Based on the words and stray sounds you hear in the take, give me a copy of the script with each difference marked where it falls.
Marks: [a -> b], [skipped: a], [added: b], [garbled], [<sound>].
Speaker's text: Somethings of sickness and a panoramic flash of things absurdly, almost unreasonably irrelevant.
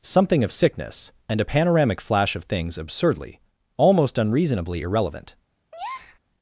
[Somethings -> Something] of sickness and a panoramic flash of things absurdly, almost unreasonably irrelevant. [breath]